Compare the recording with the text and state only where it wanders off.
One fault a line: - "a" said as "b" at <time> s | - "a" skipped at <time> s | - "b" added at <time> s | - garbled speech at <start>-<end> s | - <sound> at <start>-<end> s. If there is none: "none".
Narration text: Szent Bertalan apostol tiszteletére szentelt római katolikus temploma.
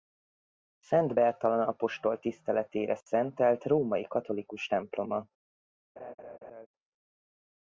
- laugh at 6.0-6.7 s